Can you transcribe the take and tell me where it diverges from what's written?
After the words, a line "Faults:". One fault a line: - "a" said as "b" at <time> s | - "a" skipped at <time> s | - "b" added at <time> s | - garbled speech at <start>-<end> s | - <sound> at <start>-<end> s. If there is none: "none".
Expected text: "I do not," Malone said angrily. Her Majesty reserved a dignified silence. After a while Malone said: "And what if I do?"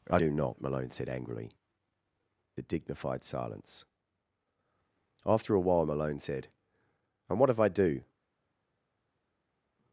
"I do not," Malone said angrily. A dignified silence. After a while Malone said: "And what if I do?"
Faults:
- "Her Majesty reserved" skipped at 1.6 s